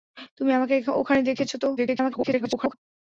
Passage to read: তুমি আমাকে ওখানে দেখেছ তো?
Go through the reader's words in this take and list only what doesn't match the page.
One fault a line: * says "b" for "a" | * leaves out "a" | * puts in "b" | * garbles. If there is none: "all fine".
* garbles